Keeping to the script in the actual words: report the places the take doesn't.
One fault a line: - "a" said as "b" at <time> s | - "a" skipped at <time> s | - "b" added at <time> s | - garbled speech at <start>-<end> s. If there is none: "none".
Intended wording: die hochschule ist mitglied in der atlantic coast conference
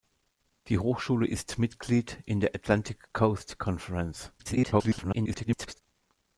- garbled speech at 4.4-5.8 s